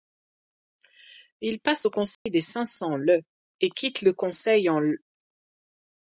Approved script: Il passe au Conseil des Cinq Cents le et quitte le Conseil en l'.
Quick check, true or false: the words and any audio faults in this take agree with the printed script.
false